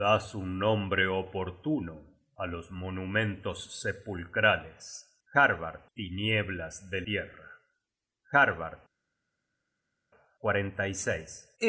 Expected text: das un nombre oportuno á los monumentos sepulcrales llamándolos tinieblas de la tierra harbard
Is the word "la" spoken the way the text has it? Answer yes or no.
no